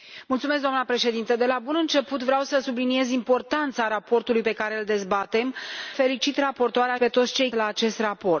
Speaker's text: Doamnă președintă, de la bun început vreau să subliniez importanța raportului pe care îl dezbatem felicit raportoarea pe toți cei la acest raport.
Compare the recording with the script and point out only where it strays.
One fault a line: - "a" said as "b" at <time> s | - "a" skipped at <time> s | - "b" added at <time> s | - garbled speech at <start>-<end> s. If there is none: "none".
none